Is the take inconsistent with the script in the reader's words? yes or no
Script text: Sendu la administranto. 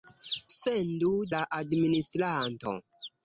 no